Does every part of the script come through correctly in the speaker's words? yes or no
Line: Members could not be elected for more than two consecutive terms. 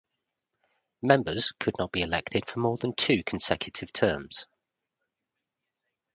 yes